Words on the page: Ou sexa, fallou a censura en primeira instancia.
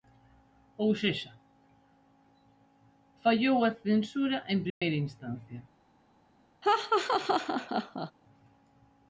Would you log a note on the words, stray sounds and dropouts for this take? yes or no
yes